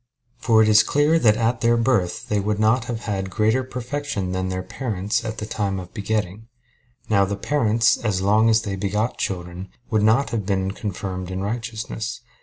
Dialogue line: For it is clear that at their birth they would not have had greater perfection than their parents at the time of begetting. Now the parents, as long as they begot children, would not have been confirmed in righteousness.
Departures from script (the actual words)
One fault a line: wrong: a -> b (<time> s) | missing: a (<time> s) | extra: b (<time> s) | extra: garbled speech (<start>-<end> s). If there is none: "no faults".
no faults